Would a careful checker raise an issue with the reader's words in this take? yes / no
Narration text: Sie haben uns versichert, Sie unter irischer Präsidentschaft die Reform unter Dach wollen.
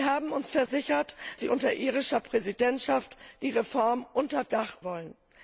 no